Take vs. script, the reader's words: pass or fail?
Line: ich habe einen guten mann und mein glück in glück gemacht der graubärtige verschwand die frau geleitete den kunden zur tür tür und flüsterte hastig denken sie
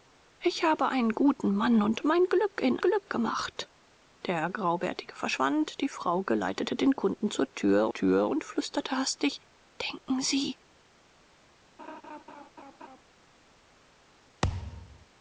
pass